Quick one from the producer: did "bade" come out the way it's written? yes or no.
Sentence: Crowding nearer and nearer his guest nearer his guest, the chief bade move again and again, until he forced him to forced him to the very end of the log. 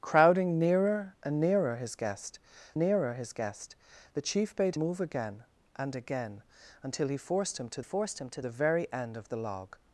yes